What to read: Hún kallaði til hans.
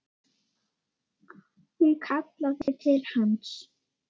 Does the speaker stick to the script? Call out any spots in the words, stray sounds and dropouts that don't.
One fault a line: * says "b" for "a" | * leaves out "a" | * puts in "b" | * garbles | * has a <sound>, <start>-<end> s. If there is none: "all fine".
* has a dropout, 2.6-2.7 s